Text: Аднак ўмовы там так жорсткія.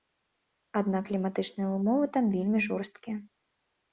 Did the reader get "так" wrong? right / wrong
wrong